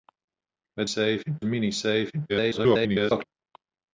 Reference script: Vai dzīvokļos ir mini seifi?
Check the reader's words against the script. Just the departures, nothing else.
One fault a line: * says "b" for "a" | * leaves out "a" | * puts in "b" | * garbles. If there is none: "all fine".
* says "seifi" for "dzīvokļos"
* garbles